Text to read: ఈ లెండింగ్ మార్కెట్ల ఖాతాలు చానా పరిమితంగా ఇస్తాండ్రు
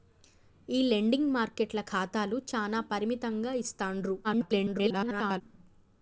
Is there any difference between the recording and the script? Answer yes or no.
yes